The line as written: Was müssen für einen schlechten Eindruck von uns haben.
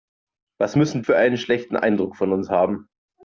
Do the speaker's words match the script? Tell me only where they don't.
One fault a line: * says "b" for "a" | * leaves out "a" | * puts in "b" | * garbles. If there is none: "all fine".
all fine